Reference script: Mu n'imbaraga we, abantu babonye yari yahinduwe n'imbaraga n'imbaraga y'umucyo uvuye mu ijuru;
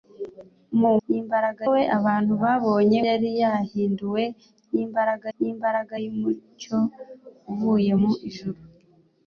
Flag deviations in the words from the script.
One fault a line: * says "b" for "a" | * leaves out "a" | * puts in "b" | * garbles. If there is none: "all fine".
all fine